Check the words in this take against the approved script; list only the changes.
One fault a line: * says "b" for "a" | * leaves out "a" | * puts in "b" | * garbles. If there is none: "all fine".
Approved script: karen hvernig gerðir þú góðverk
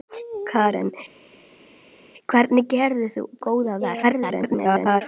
* garbles